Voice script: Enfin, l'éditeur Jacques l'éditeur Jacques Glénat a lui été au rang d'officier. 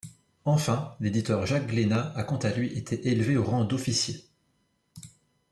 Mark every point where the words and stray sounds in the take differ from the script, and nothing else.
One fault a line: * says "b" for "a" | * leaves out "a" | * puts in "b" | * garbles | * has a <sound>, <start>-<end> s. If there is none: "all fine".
* says "Glénat a quant à" for "l'éditeur Jacques Glénat a"
* puts in "élevé"